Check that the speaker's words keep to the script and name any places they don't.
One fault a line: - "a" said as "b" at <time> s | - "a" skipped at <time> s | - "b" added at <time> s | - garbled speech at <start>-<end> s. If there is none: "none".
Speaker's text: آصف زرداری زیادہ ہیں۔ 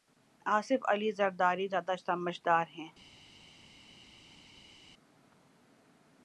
- "علی" added at 0.9 s
- "سمجھدار" added at 2.0 s